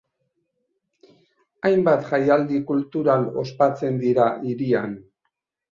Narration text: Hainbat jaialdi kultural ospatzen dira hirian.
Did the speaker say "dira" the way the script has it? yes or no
yes